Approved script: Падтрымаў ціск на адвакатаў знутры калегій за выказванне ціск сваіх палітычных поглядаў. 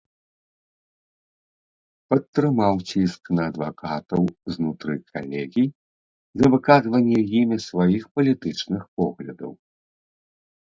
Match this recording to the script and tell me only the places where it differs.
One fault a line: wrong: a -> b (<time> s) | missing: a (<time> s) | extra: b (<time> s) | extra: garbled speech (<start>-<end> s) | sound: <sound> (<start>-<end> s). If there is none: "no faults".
wrong: ціск -> імі (7.4 s)